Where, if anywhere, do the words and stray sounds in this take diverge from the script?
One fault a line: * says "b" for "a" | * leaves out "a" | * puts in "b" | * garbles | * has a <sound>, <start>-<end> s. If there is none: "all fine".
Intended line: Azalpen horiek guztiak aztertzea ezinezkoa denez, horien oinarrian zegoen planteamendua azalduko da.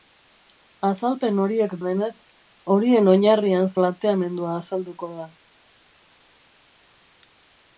* leaves out "guztiak aztertzea ezinezkoa"
* leaves out "zegoen"